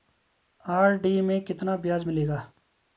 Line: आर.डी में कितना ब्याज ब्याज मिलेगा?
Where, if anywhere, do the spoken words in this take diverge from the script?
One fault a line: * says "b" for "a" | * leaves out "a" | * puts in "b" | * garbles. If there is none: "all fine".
* leaves out "ब्याज"